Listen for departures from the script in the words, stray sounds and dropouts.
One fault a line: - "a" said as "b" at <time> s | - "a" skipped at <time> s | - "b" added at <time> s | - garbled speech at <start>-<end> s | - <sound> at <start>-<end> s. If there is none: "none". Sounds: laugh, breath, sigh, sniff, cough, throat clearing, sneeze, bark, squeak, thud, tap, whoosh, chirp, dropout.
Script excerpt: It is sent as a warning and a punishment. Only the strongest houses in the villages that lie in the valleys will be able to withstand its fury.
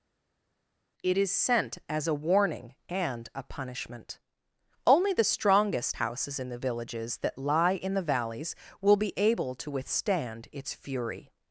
none